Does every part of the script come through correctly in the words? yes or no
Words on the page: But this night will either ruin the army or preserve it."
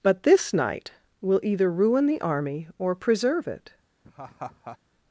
yes